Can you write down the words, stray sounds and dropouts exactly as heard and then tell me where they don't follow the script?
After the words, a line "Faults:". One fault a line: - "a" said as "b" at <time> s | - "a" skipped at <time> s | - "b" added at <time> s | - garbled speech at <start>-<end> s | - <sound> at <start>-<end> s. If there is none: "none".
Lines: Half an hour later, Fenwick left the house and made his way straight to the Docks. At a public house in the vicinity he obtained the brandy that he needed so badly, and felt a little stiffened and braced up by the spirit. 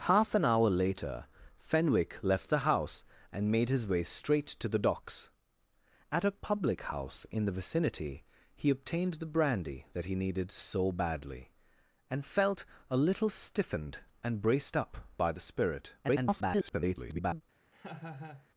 Half an hour later, Fenwick left the house and made his way straight to the Docks. At a public house in the vicinity he obtained the brandy that he needed so badly, and felt a little stiffened and braced up by the spirit. [garbled]
Faults:
- garbled speech at 16.0-17.4 s
- laugh at 17.7-18.5 s